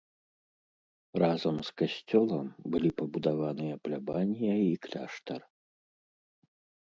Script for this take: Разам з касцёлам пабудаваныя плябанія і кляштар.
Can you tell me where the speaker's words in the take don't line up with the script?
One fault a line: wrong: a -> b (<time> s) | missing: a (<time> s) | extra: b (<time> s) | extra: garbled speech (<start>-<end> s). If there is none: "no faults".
extra: былі (2.8 s)